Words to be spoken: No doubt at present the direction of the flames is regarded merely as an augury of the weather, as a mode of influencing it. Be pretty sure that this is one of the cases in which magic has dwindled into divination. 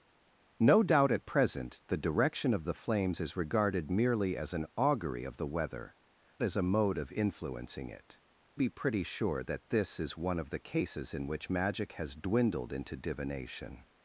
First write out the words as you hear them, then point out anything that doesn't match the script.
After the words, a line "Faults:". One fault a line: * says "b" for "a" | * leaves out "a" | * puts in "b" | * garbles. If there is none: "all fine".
No doubt at present the direction of the flames is regarded merely as an augury of the weather, as a mode of influencing it. Be pretty sure that this is one of the cases in which magic has dwindled into divination.
Faults:
all fine